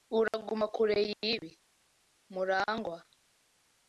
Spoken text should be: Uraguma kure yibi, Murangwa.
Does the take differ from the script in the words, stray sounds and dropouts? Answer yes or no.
yes